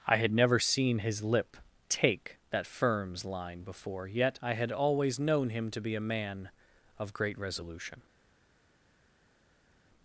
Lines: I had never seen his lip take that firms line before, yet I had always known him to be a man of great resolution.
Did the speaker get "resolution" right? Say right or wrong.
right